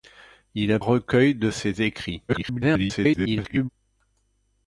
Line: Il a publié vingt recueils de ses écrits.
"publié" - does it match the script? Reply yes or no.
no